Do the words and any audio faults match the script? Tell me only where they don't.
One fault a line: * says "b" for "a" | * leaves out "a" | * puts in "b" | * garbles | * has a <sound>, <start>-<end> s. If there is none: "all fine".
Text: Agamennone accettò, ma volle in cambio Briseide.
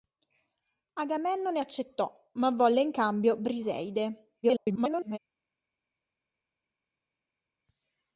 * garbles